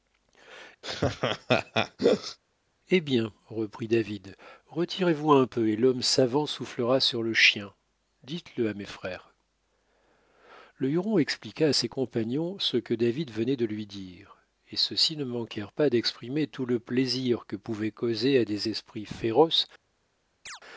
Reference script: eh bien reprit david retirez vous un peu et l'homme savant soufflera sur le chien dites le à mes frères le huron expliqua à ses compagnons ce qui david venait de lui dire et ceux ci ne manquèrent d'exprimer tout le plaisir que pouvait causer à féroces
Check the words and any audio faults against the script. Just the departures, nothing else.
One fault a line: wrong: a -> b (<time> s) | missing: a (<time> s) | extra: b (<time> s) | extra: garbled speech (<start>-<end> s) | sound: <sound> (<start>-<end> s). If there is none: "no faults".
sound: laugh (0.8-2.4 s)
wrong: qui -> que (12.8 s)
extra: pas (15.7 s)
extra: des esprits (18.4 s)
sound: chirp (20.5-20.6 s)